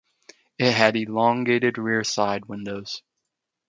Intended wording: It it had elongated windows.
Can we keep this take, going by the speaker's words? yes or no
no